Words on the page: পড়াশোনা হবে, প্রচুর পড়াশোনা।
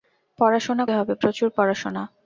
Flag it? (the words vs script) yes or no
no